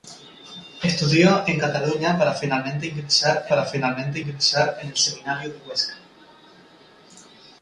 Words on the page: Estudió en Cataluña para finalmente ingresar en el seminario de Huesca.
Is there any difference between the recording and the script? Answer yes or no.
yes